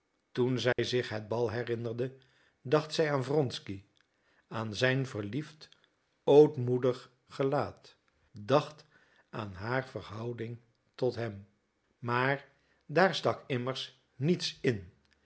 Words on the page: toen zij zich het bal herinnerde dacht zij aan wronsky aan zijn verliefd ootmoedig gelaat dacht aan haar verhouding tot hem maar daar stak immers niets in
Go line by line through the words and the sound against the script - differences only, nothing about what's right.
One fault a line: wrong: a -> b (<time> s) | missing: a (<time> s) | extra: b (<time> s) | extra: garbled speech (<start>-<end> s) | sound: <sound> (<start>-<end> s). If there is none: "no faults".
sound: dropout (0.7-0.8 s)